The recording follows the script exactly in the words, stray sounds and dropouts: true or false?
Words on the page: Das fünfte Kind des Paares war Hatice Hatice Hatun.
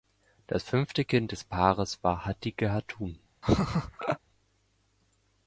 false